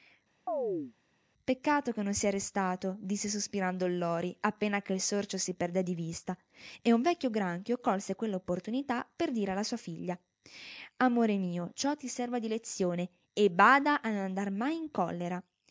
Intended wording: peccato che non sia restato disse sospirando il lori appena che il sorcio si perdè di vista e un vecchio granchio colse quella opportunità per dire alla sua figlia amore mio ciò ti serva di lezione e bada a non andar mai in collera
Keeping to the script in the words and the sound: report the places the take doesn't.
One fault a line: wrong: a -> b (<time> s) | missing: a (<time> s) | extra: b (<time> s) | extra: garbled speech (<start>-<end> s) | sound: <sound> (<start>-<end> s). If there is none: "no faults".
sound: chirp (0.5-0.9 s)